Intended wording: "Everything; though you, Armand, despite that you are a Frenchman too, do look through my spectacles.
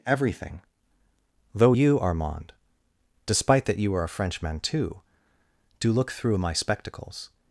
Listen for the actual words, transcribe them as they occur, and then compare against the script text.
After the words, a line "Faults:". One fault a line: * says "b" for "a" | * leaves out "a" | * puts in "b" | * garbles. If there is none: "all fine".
"Everything; though you, Armand, despite that you are a Frenchman too, do look through my spectacles.
Faults:
all fine